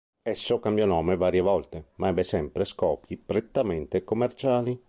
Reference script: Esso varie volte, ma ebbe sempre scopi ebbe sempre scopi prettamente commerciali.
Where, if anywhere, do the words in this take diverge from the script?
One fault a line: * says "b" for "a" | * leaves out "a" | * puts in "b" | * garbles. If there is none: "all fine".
* puts in "cambiò nome"
* leaves out "ebbe sempre scopi"